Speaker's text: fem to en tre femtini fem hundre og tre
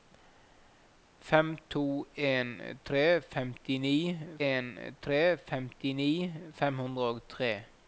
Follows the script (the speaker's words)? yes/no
no